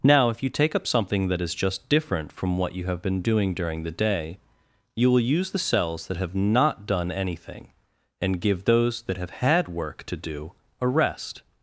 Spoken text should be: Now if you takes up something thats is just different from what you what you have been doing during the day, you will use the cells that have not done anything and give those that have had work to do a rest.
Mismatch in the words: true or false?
true